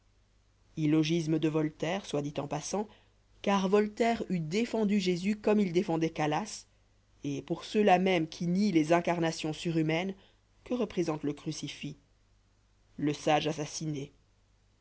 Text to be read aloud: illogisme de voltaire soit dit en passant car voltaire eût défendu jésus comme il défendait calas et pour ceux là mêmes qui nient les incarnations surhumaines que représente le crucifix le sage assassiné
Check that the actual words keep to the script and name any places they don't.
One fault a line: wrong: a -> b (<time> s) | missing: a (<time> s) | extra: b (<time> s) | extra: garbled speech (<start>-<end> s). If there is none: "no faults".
no faults